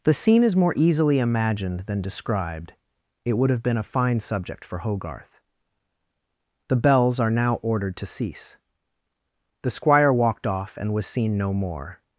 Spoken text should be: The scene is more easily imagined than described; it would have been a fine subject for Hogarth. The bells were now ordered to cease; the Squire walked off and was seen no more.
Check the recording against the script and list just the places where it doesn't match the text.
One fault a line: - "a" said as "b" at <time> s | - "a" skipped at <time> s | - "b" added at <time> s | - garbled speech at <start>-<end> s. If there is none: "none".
- "were" said as "are" at 7.2 s